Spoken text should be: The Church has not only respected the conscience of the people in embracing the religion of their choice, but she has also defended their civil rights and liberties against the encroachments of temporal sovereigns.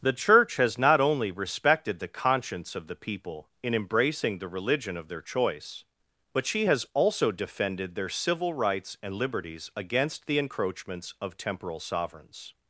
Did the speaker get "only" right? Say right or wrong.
right